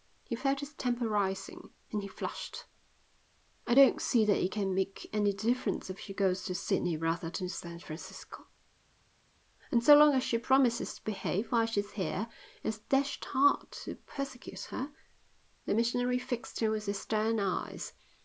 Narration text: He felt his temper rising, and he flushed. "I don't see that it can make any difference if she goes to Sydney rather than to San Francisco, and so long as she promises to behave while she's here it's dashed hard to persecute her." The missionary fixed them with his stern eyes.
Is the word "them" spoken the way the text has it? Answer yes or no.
no